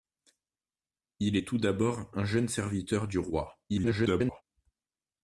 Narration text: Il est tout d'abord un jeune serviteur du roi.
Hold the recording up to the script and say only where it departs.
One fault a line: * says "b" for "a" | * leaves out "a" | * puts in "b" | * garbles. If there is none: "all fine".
* garbles